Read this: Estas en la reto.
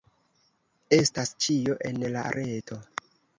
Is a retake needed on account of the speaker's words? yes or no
yes